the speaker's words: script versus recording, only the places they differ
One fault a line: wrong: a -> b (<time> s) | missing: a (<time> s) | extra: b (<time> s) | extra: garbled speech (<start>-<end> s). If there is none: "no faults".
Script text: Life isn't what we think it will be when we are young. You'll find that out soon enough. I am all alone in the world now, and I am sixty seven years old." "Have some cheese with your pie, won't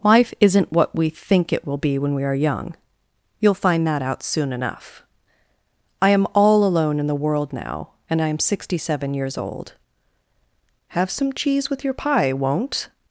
no faults